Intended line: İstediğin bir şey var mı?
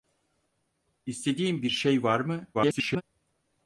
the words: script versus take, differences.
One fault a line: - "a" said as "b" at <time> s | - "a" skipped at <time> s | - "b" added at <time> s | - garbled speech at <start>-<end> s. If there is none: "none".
- garbled speech at 2.5-3.0 s